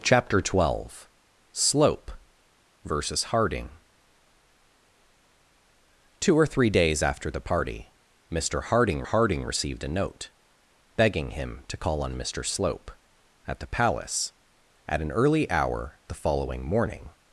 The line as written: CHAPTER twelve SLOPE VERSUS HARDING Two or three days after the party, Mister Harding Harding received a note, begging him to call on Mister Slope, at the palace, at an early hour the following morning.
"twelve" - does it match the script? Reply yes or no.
yes